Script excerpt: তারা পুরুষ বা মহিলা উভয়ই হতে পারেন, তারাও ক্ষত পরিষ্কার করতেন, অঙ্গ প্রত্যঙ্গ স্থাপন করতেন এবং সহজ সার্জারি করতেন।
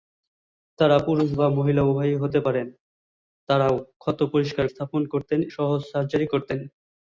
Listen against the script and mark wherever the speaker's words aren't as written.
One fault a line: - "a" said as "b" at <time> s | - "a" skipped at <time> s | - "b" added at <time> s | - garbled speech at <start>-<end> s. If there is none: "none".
- "করতেন অঙ্গ প্রত্যঙ্গ" skipped at 4.7 s
- "এবং" skipped at 5.4 s